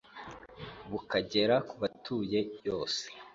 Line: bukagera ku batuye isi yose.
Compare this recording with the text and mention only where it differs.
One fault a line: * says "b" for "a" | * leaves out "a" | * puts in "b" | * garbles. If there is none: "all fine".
* leaves out "isi"